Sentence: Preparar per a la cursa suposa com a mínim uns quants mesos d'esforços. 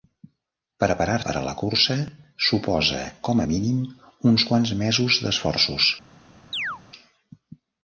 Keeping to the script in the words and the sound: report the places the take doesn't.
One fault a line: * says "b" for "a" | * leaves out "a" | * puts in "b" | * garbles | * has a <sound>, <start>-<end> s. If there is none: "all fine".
* has a chirp, 6.5-6.8 s